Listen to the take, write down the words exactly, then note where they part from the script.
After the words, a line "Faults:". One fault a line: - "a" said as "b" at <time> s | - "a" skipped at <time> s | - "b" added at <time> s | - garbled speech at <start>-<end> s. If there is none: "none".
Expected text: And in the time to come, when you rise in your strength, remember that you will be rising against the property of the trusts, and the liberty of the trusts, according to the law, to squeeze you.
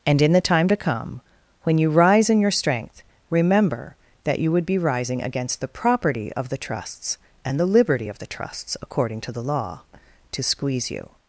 And in the time to come, when you rise in your strength, remember that you would be rising against the property of the trusts, and the liberty of the trusts, according to the law, to squeeze you.
Faults:
- "will" said as "would" at 4.5 s